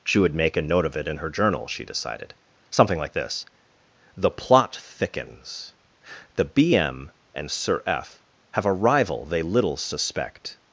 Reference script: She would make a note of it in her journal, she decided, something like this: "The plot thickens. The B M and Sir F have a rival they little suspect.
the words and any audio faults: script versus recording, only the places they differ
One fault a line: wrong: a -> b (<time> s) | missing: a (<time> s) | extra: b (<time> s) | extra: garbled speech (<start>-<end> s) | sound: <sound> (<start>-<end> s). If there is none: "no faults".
no faults